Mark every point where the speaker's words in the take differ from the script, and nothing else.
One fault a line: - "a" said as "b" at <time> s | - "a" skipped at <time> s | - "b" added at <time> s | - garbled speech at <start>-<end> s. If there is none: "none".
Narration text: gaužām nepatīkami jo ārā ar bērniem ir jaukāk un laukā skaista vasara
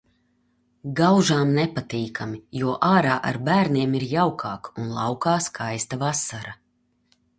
none